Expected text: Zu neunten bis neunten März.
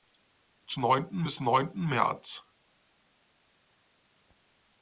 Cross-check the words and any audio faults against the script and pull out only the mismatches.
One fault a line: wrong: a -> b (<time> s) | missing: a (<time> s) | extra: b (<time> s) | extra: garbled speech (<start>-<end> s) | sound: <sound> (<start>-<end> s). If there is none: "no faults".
no faults